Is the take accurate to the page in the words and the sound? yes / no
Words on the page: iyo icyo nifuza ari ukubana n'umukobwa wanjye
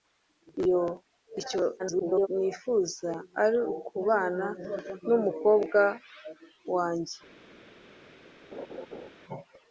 no